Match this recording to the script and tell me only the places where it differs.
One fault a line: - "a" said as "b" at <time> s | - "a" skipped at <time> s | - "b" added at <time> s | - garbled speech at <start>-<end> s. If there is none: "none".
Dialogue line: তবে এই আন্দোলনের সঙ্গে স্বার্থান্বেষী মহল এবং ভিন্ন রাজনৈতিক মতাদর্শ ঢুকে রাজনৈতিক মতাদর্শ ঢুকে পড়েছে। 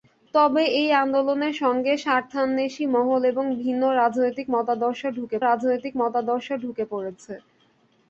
none